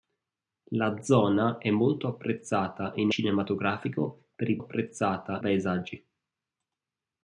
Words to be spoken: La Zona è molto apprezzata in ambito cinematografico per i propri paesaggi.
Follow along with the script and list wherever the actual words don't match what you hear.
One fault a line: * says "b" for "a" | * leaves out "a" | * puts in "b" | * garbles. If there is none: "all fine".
* leaves out "ambito"
* says "apprezzata" for "propri"